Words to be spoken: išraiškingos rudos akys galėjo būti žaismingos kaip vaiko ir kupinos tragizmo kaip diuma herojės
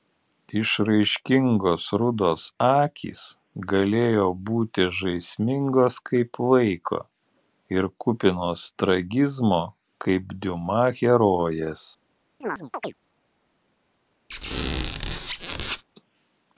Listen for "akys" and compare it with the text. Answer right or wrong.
right